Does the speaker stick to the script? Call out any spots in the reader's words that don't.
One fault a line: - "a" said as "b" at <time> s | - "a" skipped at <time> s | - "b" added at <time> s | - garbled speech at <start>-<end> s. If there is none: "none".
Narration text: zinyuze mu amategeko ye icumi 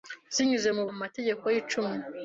none